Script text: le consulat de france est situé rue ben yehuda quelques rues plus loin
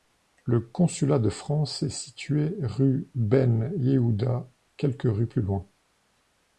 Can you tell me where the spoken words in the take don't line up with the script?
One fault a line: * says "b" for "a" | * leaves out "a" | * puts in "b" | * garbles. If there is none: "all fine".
all fine